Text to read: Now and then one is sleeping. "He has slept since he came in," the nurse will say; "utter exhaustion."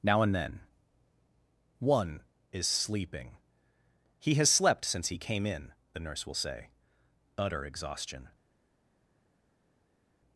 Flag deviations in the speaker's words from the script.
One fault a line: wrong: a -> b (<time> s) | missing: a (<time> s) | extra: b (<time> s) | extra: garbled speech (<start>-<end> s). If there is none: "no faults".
no faults